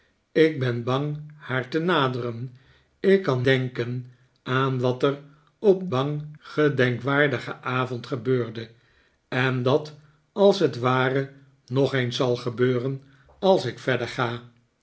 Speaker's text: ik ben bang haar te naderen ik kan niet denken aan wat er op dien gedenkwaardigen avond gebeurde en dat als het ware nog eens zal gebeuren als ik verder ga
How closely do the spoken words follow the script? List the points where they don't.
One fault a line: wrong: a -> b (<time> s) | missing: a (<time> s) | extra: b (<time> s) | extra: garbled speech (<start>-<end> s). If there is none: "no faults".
missing: niet (3.5 s)
wrong: dien -> bang (5.9 s)